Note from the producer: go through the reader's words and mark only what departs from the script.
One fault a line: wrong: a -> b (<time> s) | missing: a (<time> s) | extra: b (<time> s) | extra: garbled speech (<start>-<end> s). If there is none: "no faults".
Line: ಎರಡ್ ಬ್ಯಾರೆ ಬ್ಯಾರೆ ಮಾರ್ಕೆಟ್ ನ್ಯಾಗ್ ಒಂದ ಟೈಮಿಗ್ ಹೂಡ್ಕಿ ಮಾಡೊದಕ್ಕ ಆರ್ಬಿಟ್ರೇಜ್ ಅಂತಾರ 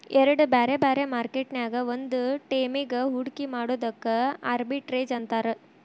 no faults